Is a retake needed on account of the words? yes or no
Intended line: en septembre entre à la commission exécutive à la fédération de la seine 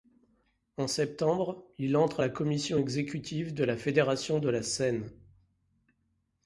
yes